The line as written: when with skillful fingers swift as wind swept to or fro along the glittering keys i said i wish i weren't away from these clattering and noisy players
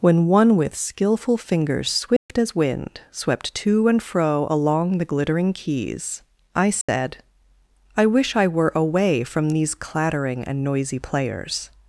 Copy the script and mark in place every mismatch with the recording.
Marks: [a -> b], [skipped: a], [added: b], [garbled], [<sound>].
when [added: one] with skillful fingers swift [dropout] as wind swept to [or -> and] fro along the glittering keys i said [dropout] i wish i [weren't -> were] away from these clattering and noisy players